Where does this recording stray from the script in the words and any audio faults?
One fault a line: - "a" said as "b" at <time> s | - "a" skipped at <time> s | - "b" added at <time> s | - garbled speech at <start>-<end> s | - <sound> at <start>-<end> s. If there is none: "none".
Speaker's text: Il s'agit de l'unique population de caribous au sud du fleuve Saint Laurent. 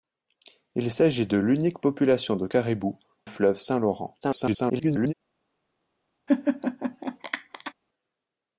- "au sud du" skipped at 3.0 s
- garbled speech at 4.2-5.1 s
- laugh at 6.3-7.7 s